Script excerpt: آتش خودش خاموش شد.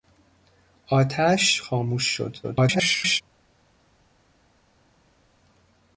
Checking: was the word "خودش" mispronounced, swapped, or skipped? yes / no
yes